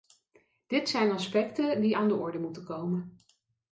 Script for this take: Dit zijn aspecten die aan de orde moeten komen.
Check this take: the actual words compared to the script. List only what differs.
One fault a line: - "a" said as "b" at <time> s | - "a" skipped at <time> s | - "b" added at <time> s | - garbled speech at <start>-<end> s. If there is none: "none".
none